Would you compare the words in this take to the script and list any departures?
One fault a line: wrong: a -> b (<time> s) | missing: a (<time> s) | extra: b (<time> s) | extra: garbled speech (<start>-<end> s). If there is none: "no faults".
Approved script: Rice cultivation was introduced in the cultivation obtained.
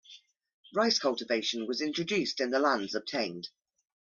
wrong: cultivation -> lands (2.6 s)